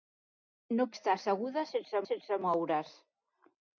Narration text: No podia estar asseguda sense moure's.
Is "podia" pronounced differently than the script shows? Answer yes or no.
yes